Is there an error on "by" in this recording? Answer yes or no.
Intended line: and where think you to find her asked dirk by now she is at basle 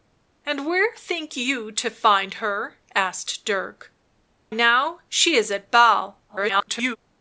yes